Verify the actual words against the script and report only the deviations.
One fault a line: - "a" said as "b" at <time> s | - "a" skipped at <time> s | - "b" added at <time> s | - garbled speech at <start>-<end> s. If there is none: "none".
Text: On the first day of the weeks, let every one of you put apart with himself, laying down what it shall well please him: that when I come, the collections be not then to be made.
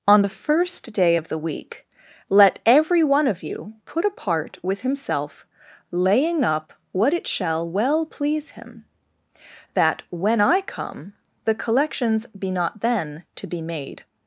- "weeks" said as "week" at 1.4 s
- "down" said as "up" at 6.4 s